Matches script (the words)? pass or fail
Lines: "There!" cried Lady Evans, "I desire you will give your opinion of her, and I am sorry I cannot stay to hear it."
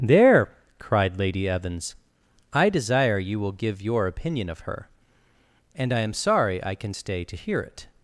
fail